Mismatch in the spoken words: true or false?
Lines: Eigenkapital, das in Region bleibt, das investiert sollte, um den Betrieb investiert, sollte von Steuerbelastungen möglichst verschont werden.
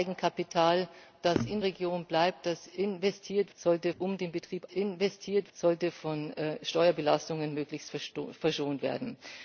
false